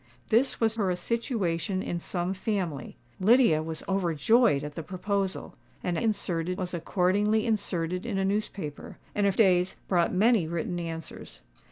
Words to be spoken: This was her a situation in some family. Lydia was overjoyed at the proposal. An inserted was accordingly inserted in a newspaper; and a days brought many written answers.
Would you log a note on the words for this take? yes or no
no